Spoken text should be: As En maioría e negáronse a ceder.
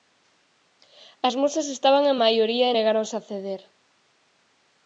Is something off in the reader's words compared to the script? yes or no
yes